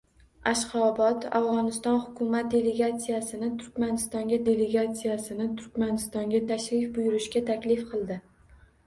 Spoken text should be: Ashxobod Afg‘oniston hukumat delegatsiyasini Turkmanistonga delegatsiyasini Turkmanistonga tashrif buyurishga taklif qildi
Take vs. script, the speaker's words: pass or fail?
pass